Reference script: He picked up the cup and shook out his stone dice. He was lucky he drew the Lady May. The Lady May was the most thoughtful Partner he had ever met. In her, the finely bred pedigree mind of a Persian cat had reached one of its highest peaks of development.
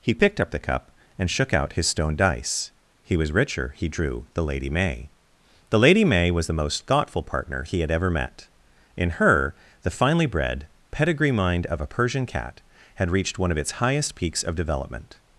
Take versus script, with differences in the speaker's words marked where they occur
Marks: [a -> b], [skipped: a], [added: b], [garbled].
He picked up the cup and shook out his stone dice. He was [lucky -> richer] he drew the Lady May. The Lady May was the most thoughtful Partner he had ever met. In her, the finely bred pedigree mind of a Persian cat had reached one of its highest peaks of development.